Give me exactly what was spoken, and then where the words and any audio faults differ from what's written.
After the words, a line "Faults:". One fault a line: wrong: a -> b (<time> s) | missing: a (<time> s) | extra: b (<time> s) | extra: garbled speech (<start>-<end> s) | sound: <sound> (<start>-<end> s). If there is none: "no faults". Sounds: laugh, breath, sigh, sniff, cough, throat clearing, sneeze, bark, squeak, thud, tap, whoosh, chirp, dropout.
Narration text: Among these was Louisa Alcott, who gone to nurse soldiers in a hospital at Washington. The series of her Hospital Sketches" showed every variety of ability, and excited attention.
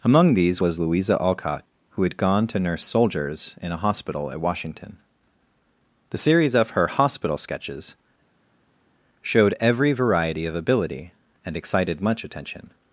Among these was Louisa Alcott, who had gone to nurse soldiers in a hospital at Washington. The series of her Hospital Sketches" showed every variety of ability, and excited much attention.
Faults:
extra: had (2.0 s)
extra: much (12.0 s)